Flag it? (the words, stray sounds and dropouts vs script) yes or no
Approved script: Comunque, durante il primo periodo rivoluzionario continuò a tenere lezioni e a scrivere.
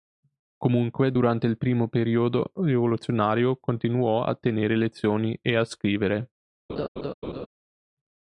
yes